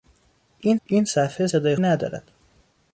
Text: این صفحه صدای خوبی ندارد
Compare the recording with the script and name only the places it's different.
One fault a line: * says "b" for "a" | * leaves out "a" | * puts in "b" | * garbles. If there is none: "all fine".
* puts in "این"
* leaves out "خوبی"